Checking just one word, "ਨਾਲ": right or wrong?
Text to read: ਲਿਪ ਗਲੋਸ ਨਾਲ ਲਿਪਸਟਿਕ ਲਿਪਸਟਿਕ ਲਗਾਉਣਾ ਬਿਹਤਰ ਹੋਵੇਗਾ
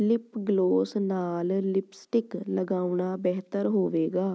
right